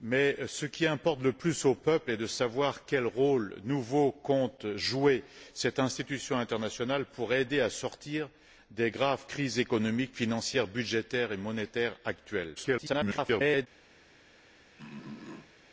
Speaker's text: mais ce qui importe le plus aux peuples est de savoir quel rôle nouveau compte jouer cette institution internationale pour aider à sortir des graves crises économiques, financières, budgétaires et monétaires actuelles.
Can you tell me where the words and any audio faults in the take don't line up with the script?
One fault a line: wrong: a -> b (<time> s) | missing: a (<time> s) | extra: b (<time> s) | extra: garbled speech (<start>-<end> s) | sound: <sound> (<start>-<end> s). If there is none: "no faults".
extra: garbled speech (12.6-13.7 s)
sound: throat clearing (14.8-15.5 s)